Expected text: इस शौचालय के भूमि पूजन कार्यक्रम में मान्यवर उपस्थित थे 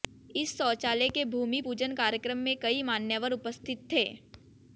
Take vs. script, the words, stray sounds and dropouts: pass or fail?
fail